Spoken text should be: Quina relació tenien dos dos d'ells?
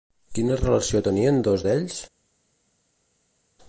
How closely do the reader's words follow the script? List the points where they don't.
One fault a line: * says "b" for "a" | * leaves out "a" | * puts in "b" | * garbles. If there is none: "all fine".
* leaves out "dos"